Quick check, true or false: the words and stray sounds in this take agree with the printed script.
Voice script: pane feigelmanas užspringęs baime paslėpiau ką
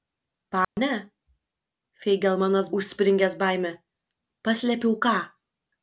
false